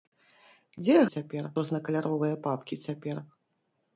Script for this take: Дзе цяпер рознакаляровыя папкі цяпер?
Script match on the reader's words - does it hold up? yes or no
yes